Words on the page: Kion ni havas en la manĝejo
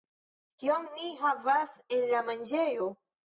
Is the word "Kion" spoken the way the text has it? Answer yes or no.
yes